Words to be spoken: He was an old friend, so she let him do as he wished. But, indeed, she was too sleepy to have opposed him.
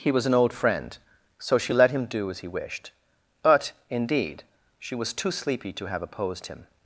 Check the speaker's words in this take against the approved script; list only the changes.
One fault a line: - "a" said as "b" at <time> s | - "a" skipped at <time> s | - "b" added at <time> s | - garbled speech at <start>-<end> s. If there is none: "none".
none